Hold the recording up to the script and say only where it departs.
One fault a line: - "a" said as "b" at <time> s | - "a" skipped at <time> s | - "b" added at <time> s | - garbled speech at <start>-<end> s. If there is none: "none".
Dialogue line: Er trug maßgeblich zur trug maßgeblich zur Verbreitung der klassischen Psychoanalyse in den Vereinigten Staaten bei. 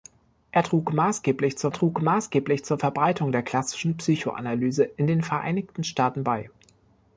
none